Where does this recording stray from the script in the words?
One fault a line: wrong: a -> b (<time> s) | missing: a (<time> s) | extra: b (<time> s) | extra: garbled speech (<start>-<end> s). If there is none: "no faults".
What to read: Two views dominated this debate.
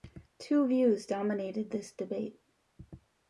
no faults